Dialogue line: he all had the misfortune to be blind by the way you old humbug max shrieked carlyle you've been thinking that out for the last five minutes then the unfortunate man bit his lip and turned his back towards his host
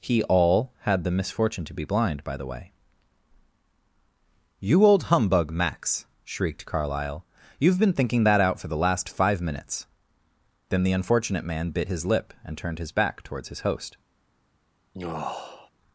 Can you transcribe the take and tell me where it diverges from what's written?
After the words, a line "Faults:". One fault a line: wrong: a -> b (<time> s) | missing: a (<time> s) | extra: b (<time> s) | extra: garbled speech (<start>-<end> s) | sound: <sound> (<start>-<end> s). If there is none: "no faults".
he all had the misfortune to be blind by the way you old humbug max shrieked carlyle you've been thinking that out for the last five minutes then the unfortunate man bit his lip and turned his back towards his host
Faults:
sound: sigh (14.9-15.7 s)